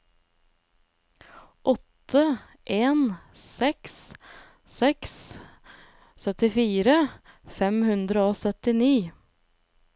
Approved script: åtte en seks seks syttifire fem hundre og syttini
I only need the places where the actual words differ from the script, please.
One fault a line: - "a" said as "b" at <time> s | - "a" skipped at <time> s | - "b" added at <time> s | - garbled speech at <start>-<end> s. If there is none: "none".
none